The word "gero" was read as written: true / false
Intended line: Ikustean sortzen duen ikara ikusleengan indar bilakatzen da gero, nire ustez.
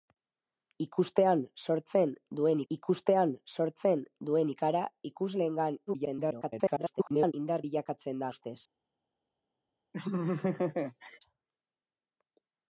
false